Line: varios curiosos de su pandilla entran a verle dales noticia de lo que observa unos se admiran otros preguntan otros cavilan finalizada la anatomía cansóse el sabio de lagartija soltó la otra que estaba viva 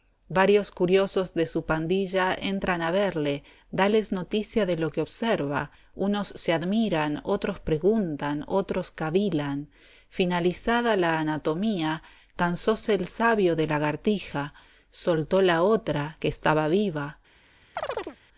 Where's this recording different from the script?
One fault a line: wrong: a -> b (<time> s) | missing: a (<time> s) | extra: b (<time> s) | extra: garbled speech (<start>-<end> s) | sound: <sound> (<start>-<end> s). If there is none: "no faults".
sound: chirp (17.8-18.2 s)